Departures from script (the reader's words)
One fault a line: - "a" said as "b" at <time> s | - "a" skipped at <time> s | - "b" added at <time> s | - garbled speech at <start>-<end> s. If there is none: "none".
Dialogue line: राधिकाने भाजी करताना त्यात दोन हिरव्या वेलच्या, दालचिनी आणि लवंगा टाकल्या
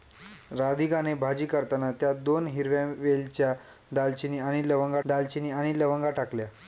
- "दालचिनी आणि लवंगा" added at 5.0 s